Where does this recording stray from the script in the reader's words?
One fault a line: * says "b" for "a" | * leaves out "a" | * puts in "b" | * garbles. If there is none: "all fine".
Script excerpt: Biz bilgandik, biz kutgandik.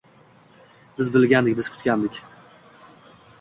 all fine